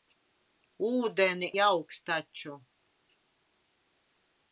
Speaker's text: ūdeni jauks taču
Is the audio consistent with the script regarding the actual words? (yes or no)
yes